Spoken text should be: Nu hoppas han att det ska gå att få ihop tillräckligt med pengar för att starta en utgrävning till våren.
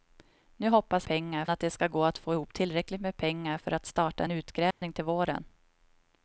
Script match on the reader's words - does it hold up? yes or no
no